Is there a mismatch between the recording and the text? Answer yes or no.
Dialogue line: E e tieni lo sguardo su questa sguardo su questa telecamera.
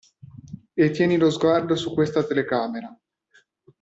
yes